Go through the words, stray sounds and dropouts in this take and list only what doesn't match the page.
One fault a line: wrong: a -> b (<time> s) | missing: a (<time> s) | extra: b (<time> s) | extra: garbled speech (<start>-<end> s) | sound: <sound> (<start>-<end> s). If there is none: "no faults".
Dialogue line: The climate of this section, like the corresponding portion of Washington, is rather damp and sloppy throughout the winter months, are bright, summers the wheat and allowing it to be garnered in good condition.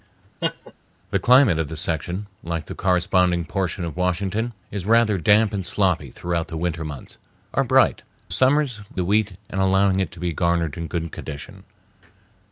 sound: laugh (0.4-0.7 s)